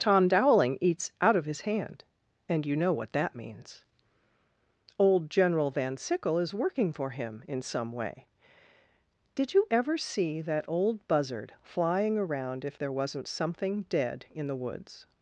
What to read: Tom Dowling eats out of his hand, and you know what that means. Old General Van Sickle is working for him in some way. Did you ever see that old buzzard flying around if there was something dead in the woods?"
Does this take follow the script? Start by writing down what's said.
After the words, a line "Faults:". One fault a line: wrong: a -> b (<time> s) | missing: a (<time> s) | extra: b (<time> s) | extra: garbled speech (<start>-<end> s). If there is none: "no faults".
Tom Dowling eats out of his hand, and you know what that means. Old General Van Sickle is working for him in some way. Did you ever see that old buzzard flying around if there wasn't something dead in the woods?"
Faults:
wrong: was -> wasn't (12.9 s)